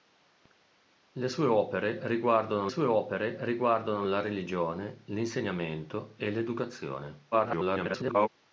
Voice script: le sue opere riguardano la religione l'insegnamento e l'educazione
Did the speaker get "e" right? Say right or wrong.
right